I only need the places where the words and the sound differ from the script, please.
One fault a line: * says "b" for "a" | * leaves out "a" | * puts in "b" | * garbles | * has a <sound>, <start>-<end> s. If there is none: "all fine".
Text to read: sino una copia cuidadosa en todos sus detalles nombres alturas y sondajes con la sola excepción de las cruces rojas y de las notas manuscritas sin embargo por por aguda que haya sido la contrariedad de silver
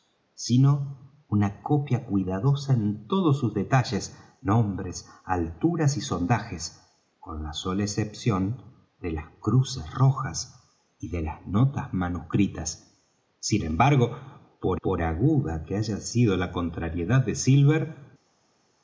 all fine